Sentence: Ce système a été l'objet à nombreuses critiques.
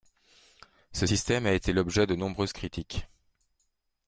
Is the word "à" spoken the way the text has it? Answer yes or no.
no